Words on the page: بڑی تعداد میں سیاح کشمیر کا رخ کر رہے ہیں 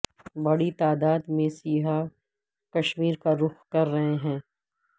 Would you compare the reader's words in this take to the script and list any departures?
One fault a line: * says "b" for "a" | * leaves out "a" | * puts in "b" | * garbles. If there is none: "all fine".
all fine